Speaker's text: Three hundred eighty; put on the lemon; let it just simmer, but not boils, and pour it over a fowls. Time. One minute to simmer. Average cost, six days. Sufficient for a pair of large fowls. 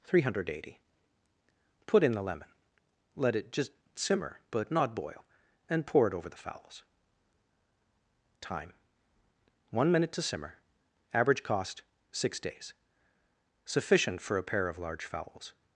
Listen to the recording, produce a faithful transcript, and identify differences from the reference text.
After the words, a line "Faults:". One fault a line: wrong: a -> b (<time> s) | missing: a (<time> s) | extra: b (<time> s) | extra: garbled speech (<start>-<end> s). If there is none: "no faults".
Three hundred eighty; put in the lemon; let it just simmer, but not boil, and pour it over the fowls. Time. One minute to simmer. Average cost, six days. Sufficient for a pair of large fowls.
Faults:
wrong: on -> in (2.0 s)
wrong: boils -> boil (5.0 s)
wrong: a -> the (6.3 s)